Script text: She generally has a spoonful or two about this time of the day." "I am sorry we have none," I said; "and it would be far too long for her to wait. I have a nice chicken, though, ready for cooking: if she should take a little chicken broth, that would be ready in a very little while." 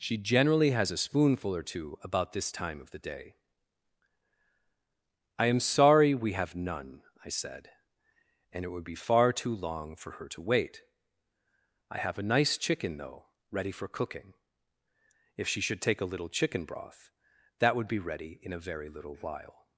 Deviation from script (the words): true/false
false